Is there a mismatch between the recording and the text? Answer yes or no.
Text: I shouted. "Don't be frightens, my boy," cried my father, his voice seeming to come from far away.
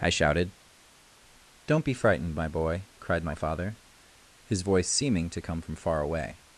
yes